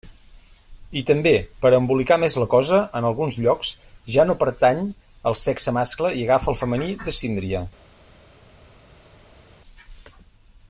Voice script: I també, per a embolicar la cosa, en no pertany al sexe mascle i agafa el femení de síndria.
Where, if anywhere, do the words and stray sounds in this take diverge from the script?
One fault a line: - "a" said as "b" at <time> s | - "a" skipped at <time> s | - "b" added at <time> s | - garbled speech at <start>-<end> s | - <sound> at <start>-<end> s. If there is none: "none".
- "més" added at 2.2 s
- "alguns llocs ja" added at 3.1 s